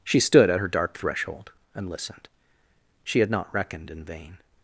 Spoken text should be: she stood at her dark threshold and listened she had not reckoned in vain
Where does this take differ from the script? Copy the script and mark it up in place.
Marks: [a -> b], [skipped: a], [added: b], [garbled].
she stood at her dark threshold and listened she had not reckoned in vain